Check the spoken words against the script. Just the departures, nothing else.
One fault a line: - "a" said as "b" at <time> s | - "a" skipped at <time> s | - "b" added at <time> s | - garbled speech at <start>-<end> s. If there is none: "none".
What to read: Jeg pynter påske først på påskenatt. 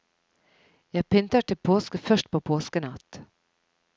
- "til" added at 1.4 s